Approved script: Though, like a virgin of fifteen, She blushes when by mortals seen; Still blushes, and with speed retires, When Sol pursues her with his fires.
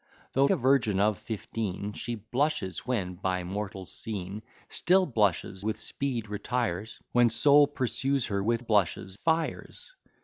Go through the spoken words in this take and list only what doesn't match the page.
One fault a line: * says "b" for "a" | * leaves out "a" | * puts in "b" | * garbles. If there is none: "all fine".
* leaves out "like"
* leaves out "and"
* says "blushes" for "his"